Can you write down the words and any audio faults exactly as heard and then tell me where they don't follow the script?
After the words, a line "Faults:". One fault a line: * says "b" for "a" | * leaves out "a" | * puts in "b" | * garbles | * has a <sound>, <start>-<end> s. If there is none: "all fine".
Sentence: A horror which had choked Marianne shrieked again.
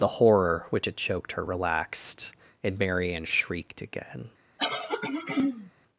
The horror which had choked her relaxed and Marianne shrieked again.
Faults:
* says "The" for "A"
* puts in "her relaxed and"
* has a throat clearing, 4.6-5.7 s